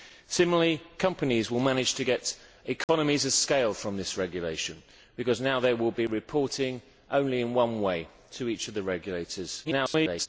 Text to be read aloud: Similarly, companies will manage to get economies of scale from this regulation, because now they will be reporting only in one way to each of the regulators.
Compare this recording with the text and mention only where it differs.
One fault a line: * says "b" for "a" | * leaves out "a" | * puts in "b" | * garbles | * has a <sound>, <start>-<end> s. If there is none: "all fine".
* has a dropout, 2.8-2.9 s
* garbles